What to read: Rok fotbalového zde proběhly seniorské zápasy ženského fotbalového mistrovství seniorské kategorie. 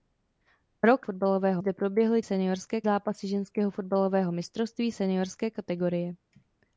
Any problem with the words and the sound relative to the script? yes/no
no